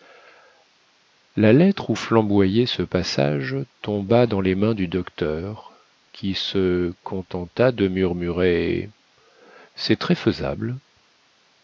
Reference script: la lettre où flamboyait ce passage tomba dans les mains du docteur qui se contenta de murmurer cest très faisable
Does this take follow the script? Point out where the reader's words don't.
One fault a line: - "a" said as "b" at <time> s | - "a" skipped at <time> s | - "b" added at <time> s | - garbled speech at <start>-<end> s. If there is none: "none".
none